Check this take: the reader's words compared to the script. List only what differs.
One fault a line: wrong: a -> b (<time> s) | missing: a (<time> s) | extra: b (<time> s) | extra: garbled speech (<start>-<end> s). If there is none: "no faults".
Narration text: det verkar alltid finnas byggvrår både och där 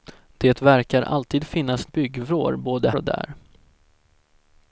no faults